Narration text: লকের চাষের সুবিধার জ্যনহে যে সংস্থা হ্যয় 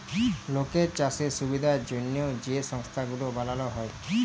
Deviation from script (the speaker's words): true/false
true